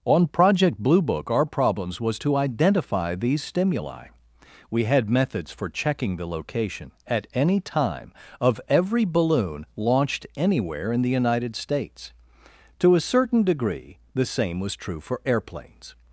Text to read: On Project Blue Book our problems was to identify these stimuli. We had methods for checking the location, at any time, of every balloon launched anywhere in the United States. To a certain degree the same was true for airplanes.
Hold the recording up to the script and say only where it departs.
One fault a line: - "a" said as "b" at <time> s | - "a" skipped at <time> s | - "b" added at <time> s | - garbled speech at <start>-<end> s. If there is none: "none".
none